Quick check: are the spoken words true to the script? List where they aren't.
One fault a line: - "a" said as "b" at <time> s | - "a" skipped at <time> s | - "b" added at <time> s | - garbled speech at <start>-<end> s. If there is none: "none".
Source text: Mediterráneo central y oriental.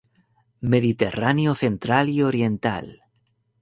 none